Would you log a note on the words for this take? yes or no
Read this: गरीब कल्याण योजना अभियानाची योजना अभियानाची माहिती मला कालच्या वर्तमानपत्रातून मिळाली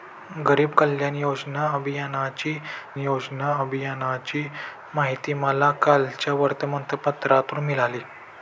no